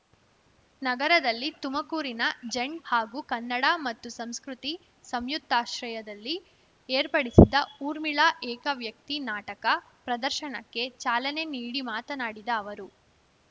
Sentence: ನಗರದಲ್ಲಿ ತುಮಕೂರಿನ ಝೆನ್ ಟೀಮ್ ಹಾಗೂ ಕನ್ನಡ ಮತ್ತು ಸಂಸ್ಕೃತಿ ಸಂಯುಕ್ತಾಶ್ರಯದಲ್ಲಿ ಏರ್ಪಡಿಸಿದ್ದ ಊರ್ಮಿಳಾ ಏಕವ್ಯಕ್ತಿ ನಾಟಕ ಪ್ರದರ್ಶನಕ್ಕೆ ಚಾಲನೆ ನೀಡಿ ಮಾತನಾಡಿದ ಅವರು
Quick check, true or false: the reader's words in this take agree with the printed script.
false